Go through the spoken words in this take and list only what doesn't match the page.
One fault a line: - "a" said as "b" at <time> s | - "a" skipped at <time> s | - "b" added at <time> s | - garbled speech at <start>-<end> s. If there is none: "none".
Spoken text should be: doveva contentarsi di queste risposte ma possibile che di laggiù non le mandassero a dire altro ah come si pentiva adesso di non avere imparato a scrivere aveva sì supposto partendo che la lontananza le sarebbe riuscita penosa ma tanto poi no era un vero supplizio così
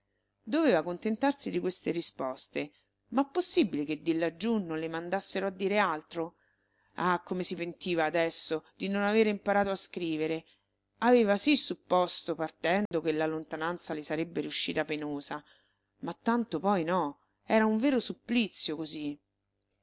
none